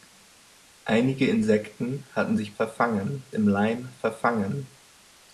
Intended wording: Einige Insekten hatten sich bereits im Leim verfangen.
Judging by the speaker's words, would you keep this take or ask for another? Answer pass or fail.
fail